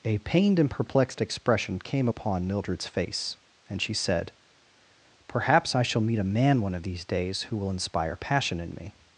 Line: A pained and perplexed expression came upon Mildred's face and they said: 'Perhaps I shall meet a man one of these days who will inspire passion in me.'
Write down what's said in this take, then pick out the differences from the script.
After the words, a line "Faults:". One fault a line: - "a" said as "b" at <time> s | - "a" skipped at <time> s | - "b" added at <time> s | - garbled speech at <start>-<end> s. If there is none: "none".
A pained and perplexed expression came upon Mildred's face and she said: 'Perhaps I shall meet a man one of these days who will inspire passion in me.'
Faults:
- "they" said as "she" at 3.8 s